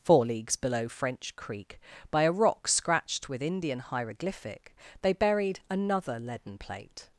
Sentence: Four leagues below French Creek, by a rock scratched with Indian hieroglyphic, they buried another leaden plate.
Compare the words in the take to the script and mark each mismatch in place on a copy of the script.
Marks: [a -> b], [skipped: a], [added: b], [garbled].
Four leagues below French Creek, by a rock scratched with Indian hieroglyphic, they buried another leaden plate.